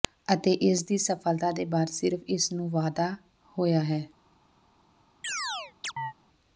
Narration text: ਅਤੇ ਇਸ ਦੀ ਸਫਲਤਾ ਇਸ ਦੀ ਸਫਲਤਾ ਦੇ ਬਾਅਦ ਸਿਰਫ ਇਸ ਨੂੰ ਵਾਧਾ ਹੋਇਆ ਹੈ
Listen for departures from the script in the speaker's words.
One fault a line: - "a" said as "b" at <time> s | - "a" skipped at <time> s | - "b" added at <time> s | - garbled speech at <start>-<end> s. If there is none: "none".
- "ਇਸ ਦੀ ਸਫਲਤਾ" skipped at 1.5 s